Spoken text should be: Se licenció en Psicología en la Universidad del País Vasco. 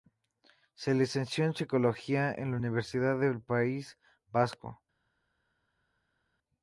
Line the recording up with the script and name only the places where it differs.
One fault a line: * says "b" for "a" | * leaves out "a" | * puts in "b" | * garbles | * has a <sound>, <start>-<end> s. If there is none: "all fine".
all fine